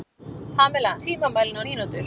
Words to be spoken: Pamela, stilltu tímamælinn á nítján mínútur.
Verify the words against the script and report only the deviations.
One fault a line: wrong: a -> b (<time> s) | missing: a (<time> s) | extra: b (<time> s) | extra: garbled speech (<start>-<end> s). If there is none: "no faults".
missing: stilltu (0.9 s)
missing: nítján (1.6 s)